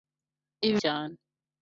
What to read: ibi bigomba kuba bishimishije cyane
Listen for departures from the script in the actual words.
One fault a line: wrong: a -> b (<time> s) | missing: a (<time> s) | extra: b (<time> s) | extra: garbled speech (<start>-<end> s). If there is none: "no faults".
missing: bigomba kuba bishimishije (0.8 s)